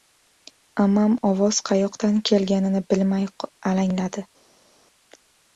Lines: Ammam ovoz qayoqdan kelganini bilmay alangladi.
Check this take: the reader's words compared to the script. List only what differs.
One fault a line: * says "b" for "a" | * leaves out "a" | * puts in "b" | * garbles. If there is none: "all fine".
all fine